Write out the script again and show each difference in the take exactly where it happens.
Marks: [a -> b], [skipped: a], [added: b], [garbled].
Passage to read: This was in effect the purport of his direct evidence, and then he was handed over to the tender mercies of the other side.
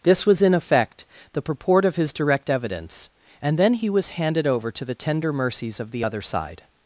This was in effect the purport of his direct evidence, and then he was handed over to the tender mercies of the other side.